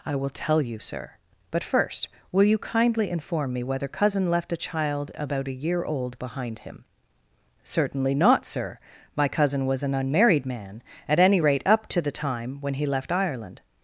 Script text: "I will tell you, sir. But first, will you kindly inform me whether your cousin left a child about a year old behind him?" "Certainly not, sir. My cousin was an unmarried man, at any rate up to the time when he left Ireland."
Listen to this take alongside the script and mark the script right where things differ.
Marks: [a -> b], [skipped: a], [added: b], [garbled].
"I will tell you, sir. But first, will you kindly inform me whether [skipped: your] cousin left a child about a year old behind him?" "Certainly not, sir. My cousin was an unmarried man, at any rate up to the time when he left Ireland."